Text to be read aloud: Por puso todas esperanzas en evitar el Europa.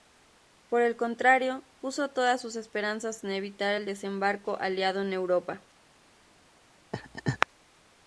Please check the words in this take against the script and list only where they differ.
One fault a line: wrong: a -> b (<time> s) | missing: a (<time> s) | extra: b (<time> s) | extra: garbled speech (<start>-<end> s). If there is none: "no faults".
extra: el contrario (0.8 s)
extra: sus (2.4 s)
extra: desembarco aliado en (3.8 s)